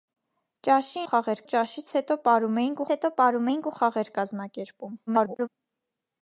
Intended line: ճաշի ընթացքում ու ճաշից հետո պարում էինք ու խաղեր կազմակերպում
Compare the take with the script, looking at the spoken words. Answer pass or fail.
fail